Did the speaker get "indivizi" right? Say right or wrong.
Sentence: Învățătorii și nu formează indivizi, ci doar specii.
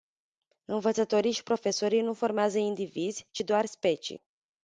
right